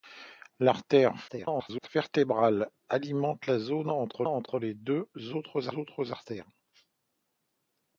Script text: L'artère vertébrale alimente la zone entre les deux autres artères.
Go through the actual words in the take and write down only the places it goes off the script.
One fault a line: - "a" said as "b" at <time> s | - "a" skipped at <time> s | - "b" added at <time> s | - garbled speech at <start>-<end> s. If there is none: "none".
- garbled speech at 1.3-1.9 s
- "entre" added at 4.2 s
- "autres" added at 5.8 s